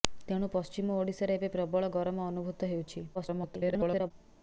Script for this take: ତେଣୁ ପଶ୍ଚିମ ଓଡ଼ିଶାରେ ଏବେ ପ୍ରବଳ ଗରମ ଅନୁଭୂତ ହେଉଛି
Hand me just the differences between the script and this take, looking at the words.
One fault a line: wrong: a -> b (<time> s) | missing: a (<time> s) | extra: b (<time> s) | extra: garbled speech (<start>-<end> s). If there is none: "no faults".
extra: garbled speech (3.1-4.1 s)